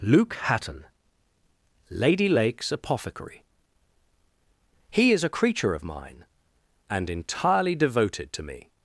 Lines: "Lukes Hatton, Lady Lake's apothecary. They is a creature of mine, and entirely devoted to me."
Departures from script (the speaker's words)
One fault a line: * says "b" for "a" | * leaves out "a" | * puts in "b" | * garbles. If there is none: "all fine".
* says "Luke" for "Lukes"
* says "He" for "They"